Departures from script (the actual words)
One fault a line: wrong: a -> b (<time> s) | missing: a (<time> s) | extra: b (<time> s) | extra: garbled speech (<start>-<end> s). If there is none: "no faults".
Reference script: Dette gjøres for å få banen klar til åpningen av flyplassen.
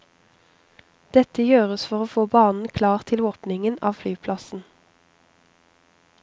no faults